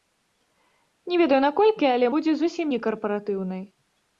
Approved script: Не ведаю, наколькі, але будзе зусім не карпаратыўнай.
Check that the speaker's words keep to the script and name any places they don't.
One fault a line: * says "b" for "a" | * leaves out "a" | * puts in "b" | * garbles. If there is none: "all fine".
all fine